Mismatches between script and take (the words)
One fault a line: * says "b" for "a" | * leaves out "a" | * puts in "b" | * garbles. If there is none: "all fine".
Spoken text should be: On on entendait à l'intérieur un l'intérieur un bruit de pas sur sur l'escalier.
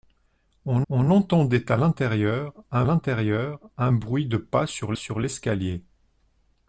all fine